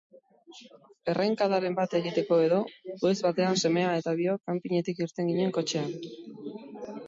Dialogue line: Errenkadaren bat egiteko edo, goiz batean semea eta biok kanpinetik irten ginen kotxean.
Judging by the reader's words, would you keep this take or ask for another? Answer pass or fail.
pass